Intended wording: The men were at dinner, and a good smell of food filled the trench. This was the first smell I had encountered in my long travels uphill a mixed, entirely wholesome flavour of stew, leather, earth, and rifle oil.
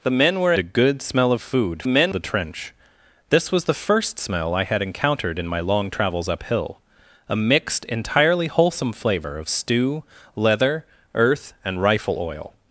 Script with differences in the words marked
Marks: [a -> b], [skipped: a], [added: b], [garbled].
The men were [skipped: at dinner, and] a good smell of food [filled -> men] the trench. This was the first smell I had encountered in my long travels uphill a mixed, entirely wholesome flavour of stew, leather, earth, and rifle oil.